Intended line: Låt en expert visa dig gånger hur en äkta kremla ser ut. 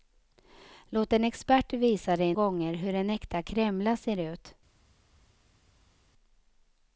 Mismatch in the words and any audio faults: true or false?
false